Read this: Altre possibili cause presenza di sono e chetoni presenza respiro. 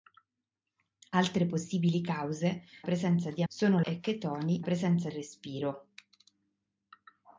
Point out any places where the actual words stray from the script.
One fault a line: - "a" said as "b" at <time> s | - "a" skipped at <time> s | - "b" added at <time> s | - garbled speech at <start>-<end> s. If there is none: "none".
none